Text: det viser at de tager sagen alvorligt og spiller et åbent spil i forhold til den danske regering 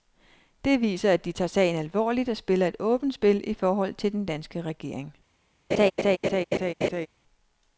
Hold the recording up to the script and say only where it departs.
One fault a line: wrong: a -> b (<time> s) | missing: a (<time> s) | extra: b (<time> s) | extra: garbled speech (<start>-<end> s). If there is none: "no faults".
no faults